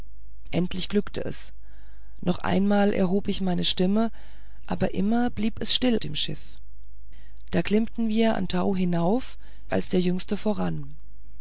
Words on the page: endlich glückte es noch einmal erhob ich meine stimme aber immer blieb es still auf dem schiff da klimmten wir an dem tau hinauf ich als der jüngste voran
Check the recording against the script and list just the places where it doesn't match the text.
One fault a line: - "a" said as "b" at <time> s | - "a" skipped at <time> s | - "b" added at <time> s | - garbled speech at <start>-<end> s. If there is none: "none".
- "auf" skipped at 6.0 s
- "dem" skipped at 8.4 s
- "ich" skipped at 9.4 s